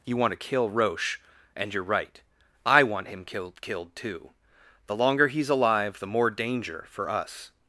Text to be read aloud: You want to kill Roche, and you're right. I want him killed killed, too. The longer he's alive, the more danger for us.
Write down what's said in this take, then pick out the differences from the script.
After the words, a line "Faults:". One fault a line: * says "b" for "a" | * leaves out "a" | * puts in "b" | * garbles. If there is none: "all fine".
You want to kill Roche, and you're right. I want him killed killed, too. The longer he's alive, the more danger for us.
Faults:
all fine